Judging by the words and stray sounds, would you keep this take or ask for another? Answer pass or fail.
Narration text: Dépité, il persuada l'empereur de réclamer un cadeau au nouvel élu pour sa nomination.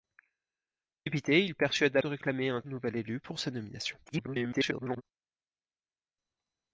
fail